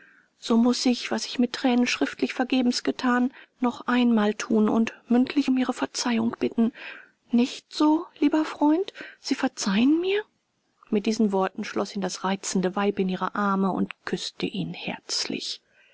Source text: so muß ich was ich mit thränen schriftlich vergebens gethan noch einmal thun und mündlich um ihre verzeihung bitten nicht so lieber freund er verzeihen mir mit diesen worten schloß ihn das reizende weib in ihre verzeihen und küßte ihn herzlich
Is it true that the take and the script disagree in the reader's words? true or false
true